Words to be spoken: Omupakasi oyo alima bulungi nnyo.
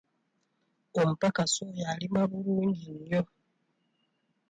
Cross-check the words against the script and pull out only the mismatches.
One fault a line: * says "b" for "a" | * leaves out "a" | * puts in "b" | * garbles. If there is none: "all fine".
all fine